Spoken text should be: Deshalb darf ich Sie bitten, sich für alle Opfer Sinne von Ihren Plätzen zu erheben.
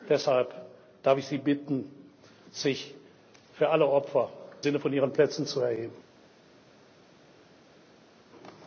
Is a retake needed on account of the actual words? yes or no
no